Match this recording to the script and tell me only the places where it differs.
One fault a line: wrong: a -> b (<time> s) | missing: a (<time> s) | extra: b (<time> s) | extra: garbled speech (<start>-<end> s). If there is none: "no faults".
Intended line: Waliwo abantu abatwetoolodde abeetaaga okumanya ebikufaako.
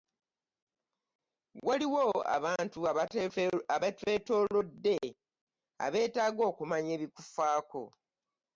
no faults